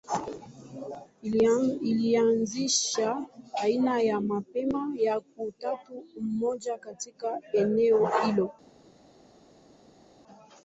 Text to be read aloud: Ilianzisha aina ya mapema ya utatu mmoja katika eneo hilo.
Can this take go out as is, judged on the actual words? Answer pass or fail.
pass